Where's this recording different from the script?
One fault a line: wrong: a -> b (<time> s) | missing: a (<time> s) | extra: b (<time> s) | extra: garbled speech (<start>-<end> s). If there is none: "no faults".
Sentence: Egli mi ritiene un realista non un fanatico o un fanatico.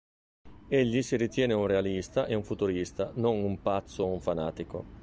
wrong: mi -> si (1.0 s)
extra: e un futurista (2.2 s)
wrong: fanatico -> pazzo (3.6 s)